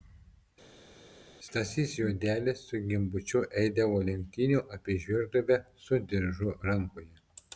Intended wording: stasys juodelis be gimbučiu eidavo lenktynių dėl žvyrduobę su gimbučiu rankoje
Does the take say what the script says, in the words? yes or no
no